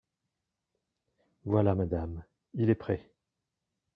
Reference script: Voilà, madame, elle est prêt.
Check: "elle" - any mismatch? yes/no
yes